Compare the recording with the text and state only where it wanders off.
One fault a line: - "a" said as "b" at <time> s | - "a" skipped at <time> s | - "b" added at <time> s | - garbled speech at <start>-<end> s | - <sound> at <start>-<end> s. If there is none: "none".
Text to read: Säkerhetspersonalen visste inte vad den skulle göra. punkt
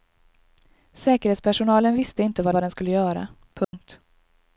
- "vad" added at 2.5 s
- dropout at 3.6-3.7 s